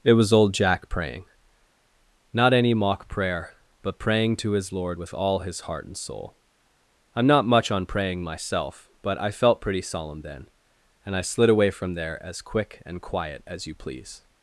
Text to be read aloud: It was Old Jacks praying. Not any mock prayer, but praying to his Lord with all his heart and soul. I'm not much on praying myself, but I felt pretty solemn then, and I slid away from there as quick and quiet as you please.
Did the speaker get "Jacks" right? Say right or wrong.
wrong